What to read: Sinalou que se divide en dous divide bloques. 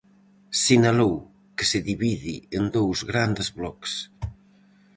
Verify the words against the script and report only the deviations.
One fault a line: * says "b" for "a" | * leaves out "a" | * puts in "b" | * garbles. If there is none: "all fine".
* says "grandes" for "divide"